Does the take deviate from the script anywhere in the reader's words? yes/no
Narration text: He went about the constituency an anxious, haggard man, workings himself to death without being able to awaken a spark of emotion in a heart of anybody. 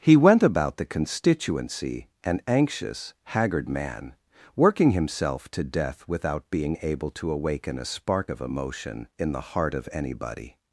yes